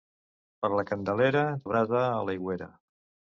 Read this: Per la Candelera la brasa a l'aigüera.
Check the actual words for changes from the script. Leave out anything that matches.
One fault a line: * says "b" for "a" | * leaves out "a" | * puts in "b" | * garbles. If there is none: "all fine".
all fine